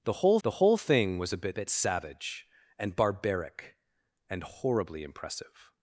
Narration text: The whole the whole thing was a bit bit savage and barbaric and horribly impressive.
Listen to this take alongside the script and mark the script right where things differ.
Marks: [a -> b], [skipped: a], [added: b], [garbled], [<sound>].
The whole the whole thing was a bit bit savage and barbaric and horribly impressive.